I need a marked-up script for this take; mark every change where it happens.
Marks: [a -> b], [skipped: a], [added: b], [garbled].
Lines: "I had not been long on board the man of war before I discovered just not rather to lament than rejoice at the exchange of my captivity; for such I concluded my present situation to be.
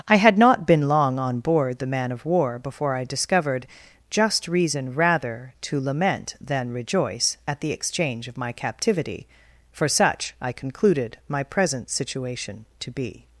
"I had not been long on board the man of war before I discovered just [not -> reason] rather to lament than rejoice at the exchange of my captivity; for such I concluded my present situation to be.